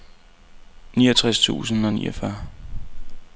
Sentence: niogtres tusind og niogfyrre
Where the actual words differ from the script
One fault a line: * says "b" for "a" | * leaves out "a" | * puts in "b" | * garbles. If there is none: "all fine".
all fine